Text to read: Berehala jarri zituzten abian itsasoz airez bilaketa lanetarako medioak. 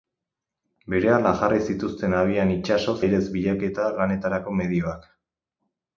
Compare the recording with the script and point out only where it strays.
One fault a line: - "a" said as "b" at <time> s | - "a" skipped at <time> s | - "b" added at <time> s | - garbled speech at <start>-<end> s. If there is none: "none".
none